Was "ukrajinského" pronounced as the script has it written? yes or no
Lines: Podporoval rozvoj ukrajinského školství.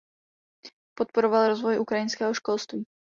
yes